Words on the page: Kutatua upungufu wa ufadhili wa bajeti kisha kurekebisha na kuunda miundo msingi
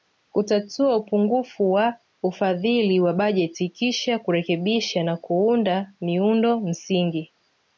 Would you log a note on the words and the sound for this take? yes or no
no